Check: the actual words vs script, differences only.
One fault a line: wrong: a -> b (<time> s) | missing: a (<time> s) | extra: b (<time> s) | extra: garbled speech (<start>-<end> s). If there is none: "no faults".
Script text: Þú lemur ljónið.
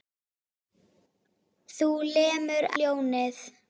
no faults